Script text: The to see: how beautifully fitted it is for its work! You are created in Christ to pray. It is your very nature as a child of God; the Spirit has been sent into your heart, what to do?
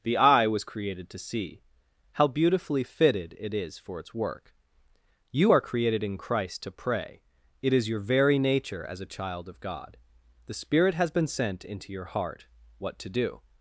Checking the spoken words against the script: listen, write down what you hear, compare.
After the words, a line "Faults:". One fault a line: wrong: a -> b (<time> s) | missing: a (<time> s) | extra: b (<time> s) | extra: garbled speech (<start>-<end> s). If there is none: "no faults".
The eye was created to see: how beautifully fitted it is for its work! You are created in Christ to pray. It is your very nature as a child of God; the Spirit has been sent into your heart, what to do?
Faults:
extra: eye was created (0.2 s)